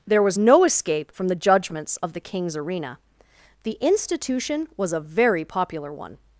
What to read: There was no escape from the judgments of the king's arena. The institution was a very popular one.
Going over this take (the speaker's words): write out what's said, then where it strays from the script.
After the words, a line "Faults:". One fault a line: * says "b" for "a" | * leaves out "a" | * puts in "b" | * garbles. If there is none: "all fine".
There was no escape from the judgments of the king's arena. The institution was a very popular one.
Faults:
all fine